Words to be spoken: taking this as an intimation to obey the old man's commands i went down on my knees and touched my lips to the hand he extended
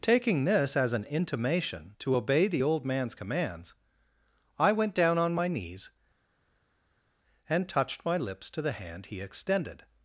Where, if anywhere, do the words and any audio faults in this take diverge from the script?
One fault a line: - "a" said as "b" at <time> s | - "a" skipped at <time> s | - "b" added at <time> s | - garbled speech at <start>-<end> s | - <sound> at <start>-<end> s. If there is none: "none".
none